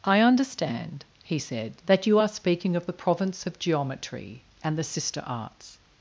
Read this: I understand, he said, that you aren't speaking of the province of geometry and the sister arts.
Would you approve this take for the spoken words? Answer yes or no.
no